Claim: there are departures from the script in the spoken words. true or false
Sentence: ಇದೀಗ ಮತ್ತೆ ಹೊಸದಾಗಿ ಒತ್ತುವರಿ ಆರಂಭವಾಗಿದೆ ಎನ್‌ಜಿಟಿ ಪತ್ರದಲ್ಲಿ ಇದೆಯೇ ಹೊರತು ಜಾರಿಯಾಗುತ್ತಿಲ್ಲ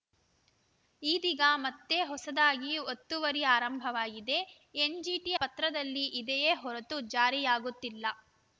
false